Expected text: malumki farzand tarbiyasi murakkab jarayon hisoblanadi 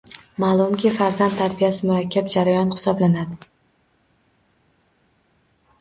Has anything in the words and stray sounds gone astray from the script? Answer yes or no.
no